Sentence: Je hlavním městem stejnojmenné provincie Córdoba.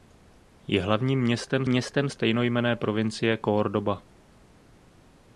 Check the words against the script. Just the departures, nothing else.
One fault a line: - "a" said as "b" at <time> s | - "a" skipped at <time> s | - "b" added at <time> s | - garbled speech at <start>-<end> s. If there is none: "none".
- "městem" added at 1.7 s